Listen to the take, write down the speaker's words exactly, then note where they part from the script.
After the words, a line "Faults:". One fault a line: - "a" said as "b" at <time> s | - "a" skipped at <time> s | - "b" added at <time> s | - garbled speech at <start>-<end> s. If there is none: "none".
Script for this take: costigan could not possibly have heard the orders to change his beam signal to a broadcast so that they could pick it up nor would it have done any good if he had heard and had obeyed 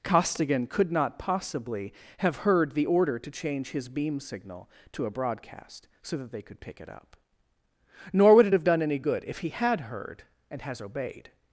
costigan could not possibly have heard the order to change his beam signal to a broadcast so that they could pick it up nor would it have done any good if he had heard and has obeyed
Faults:
- "orders" said as "order" at 2.9 s
- "had" said as "has" at 10.6 s